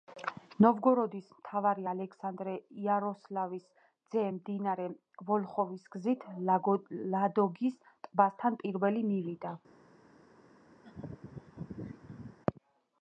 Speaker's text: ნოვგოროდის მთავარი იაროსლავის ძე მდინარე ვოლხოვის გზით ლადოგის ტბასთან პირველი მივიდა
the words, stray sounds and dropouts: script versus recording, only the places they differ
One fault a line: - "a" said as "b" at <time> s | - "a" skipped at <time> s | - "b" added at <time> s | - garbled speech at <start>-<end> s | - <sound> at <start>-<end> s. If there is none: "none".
- "ალექსანდრე" added at 1.9 s
- laugh at 10.8-12.4 s